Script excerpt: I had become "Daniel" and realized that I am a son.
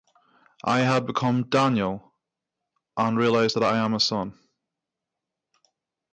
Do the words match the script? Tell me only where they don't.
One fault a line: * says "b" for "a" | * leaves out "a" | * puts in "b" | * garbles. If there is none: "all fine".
all fine